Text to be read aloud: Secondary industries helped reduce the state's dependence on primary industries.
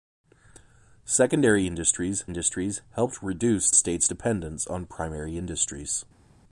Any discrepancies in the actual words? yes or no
yes